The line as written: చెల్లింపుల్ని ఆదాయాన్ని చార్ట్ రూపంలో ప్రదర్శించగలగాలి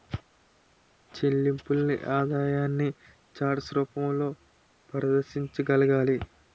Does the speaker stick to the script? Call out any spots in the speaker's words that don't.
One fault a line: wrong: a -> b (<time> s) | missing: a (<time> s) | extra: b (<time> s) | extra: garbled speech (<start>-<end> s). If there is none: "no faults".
no faults